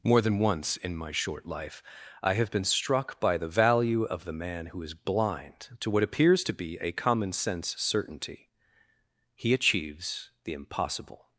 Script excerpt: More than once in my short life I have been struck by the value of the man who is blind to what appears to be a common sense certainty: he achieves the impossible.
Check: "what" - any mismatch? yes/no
no